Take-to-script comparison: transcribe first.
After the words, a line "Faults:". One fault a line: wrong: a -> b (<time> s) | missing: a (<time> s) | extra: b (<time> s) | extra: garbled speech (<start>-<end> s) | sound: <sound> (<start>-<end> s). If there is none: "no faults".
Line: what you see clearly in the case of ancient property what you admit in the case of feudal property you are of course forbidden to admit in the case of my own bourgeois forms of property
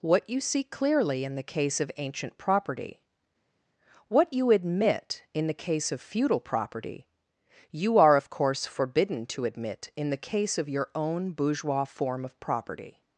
what you see clearly in the case of ancient property what you admit in the case of feudal property you are of course forbidden to admit in the case of your own bourgeois form of property
Faults:
wrong: my -> your (10.7 s)
wrong: forms -> form (11.8 s)